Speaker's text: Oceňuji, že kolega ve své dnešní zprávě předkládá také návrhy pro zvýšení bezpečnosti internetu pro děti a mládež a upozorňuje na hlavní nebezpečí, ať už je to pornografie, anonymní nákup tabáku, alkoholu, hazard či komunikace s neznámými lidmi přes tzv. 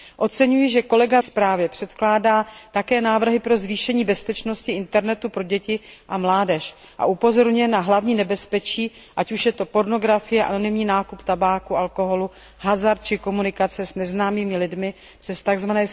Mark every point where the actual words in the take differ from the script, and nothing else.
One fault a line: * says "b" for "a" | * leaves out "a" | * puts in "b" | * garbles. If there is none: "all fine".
* leaves out "ve své dnešní"